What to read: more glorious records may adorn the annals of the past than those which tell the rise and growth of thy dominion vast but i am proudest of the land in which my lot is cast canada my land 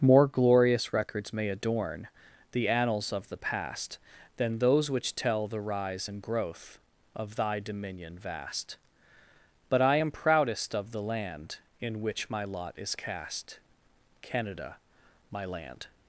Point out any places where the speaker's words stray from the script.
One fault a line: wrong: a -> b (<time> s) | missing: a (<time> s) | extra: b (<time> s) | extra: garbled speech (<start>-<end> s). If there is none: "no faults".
no faults